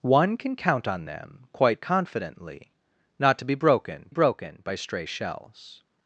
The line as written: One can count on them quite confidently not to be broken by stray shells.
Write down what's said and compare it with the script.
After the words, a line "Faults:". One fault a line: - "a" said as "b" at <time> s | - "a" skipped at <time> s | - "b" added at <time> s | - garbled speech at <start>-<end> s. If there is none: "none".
One can count on them quite confidently not to be broken broken by stray shells.
Faults:
- "broken" added at 4.1 s